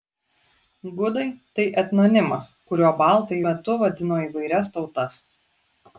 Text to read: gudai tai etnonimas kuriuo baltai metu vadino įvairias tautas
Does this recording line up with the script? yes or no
yes